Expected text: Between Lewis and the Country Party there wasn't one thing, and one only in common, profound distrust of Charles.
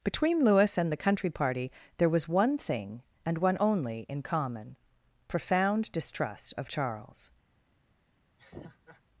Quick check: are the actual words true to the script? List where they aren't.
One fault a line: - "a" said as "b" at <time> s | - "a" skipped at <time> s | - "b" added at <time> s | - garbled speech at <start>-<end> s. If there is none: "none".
- "wasn't" said as "was" at 2.1 s